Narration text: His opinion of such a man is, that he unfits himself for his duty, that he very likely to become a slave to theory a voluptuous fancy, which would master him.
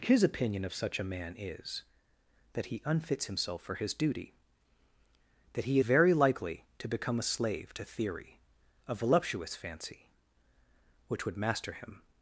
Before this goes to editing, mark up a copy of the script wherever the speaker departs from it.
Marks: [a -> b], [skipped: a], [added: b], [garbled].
His opinion of such a man is, that he unfits himself for his duty, that he very likely to become a slave to theory a voluptuous fancy, which would master him.